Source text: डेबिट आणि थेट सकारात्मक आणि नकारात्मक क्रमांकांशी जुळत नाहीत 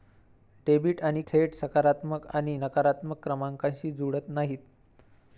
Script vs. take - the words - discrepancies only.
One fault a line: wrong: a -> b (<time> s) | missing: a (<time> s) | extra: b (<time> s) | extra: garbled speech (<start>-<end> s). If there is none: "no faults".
no faults